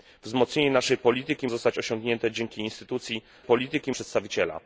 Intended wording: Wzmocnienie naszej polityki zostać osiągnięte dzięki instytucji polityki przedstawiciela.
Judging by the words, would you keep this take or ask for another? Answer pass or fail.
pass